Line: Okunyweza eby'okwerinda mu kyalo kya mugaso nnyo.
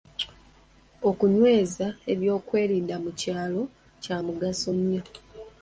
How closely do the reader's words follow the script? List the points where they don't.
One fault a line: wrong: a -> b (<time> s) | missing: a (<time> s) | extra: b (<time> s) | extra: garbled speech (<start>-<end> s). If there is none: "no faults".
no faults